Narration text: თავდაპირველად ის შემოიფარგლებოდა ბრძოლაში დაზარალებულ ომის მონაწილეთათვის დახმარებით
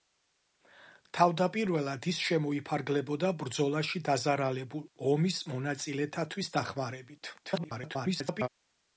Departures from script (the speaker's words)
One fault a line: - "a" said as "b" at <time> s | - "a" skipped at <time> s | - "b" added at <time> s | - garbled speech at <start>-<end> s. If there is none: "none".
- garbled speech at 7.4-8.5 s